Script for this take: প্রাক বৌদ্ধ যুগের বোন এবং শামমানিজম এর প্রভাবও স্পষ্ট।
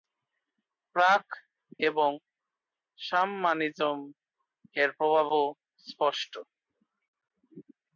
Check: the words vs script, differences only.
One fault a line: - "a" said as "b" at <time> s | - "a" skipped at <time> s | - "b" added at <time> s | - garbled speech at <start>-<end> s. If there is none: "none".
- "বৌদ্ধ যুগের বোন" skipped at 1.2 s